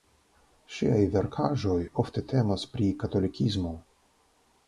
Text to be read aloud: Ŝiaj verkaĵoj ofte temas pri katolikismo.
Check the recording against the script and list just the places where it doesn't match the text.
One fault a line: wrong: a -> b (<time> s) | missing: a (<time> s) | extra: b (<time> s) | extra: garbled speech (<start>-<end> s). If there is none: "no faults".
no faults